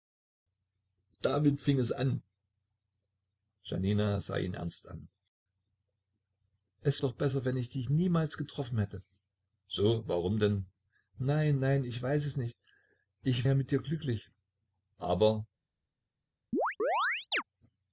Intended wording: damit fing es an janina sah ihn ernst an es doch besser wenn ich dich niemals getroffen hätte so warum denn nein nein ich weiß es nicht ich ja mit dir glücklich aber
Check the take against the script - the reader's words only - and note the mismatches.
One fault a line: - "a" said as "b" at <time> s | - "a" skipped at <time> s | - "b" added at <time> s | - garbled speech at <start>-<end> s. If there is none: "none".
none